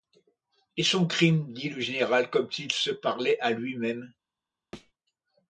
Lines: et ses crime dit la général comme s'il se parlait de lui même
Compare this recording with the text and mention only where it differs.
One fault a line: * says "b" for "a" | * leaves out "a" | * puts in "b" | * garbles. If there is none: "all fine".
* says "son" for "ses"
* says "le" for "la"
* says "à" for "de"